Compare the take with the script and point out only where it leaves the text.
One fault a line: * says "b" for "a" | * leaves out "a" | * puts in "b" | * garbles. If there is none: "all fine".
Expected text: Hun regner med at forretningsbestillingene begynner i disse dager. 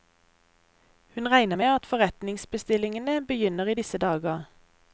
all fine